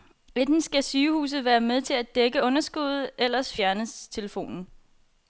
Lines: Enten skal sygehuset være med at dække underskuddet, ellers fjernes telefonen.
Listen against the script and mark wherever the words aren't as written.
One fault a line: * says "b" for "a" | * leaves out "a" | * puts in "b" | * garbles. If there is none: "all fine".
* puts in "til"